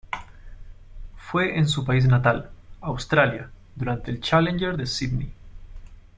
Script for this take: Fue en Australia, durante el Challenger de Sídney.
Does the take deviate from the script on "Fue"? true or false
false